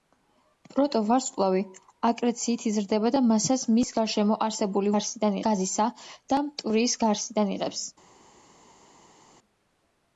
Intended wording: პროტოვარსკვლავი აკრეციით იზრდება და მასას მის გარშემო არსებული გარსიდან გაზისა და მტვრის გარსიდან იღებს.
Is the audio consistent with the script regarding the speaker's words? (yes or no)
yes